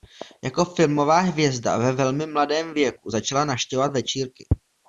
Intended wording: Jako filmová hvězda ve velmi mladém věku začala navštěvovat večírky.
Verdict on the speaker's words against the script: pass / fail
pass